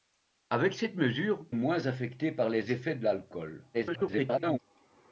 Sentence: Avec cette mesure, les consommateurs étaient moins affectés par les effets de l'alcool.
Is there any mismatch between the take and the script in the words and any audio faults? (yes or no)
yes